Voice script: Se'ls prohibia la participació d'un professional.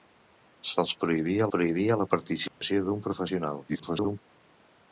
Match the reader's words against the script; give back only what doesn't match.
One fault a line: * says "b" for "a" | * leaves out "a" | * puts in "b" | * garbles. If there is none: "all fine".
* puts in "prohibia"
* garbles